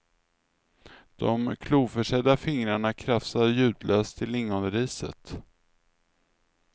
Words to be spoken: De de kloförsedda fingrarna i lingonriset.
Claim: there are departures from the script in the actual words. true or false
true